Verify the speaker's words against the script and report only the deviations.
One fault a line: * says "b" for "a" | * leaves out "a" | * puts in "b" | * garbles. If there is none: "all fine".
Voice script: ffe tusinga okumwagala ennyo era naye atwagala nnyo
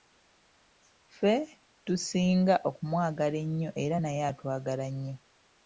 all fine